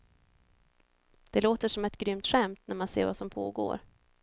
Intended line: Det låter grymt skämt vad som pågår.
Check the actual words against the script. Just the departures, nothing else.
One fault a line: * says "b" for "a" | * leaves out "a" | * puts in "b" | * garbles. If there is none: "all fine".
* puts in "som ett"
* puts in "när man ser"